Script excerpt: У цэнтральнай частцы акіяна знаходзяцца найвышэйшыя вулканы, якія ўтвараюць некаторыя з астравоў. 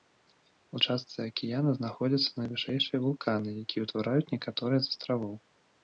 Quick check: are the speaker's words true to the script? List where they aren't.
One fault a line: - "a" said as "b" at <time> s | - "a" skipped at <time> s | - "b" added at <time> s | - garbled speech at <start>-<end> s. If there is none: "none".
- "цэнтральнай" skipped at 0.8 s